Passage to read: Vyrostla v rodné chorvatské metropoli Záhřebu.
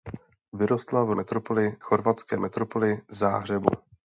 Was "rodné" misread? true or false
true